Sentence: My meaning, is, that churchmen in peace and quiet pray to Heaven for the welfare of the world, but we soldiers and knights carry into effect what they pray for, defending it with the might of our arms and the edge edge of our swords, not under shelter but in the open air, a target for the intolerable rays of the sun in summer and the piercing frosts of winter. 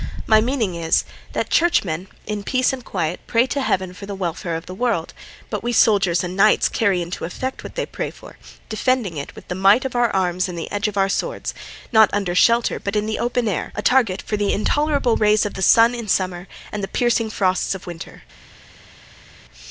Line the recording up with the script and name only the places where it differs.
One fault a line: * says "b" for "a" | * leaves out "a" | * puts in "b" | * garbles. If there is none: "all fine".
* leaves out "edge"